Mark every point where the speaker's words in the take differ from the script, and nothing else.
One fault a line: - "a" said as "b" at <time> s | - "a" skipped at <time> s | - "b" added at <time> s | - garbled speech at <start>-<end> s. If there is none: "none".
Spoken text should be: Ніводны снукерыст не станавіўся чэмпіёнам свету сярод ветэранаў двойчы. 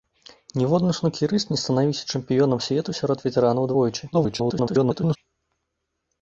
- garbled speech at 4.1-5.2 s